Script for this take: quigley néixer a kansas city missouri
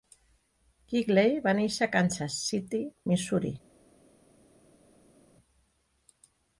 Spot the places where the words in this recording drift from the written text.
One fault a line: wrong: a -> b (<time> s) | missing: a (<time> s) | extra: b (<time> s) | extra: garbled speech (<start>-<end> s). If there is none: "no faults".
extra: va (1.4 s)